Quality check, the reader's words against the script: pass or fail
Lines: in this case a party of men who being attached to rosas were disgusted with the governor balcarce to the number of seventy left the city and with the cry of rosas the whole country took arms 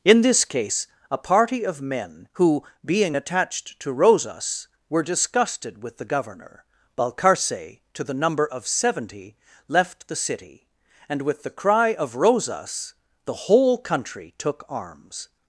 pass